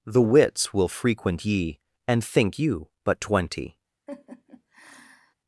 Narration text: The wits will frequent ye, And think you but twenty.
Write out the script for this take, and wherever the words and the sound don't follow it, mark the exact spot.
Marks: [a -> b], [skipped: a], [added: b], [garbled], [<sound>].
The wits will frequent ye, And think you but twenty. [laugh]